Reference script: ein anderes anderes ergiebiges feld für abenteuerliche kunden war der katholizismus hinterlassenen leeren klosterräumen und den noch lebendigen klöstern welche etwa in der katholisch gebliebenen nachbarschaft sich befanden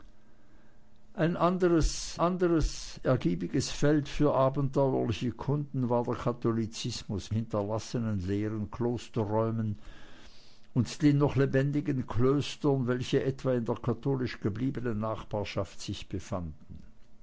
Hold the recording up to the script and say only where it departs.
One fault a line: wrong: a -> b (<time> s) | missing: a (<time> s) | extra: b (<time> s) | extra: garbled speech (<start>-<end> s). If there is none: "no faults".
no faults